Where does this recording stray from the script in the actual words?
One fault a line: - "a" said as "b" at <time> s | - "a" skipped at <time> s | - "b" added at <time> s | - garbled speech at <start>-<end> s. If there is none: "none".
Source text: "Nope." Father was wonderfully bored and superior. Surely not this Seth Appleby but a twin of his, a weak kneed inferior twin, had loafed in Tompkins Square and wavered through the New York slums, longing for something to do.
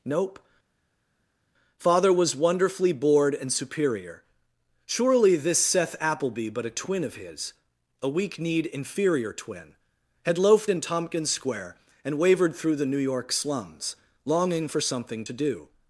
- "not" skipped at 5.3 s